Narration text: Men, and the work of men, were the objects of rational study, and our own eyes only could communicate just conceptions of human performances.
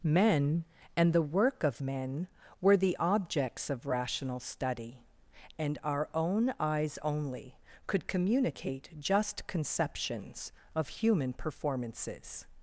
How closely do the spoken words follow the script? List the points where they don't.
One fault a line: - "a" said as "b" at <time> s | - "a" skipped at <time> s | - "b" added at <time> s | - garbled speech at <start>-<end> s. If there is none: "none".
none